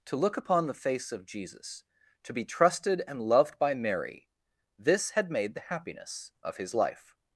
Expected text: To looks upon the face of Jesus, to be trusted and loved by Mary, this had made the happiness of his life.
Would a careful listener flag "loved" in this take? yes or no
no